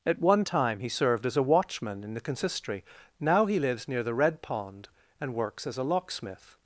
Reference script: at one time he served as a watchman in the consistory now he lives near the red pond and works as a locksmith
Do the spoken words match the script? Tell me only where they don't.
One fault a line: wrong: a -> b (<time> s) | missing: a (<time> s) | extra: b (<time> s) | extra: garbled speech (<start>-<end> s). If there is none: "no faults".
no faults